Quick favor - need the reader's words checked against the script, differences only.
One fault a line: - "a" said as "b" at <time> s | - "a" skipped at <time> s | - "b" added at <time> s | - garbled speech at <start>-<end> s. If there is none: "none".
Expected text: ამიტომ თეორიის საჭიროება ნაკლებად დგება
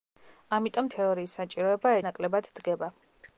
none